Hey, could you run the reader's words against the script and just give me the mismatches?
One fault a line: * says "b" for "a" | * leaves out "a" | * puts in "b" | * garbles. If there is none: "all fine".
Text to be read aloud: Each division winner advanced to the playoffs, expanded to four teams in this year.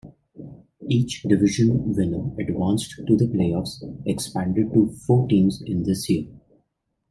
all fine